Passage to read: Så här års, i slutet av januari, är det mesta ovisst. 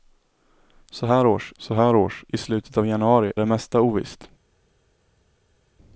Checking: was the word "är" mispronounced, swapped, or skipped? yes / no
yes